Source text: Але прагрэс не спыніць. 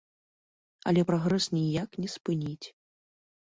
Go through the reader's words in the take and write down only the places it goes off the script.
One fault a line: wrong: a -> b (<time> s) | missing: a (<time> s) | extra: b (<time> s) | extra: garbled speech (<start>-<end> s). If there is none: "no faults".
extra: ніяк (1.6 s)